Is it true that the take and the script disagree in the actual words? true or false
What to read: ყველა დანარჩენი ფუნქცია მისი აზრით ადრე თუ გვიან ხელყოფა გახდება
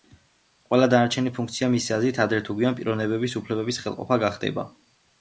true